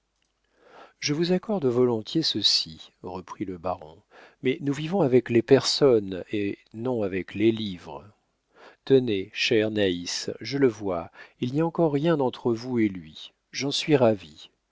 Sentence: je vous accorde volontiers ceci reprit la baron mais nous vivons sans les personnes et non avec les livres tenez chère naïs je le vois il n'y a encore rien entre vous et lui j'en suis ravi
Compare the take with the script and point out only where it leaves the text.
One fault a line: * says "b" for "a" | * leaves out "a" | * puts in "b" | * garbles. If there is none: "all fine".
* says "le" for "la"
* says "avec" for "sans"